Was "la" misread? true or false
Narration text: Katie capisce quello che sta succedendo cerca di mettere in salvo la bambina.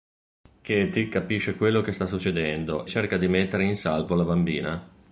false